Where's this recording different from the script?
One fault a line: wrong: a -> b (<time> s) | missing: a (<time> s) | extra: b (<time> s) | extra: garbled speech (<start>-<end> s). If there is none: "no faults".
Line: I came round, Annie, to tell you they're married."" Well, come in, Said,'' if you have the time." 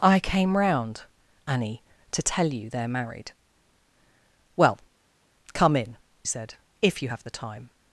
no faults